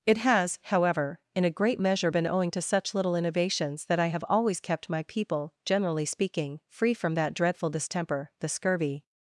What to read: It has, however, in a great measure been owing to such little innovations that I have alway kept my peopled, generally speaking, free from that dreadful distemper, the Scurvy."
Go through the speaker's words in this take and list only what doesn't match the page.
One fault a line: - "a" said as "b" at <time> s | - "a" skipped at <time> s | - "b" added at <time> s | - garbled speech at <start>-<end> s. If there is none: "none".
- "alway" said as "always" at 4.3 s
- "peopled" said as "people" at 5.0 s